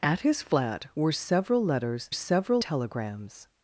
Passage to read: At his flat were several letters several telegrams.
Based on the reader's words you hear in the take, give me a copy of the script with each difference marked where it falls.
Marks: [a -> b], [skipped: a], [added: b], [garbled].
At his flat were several letters several telegrams.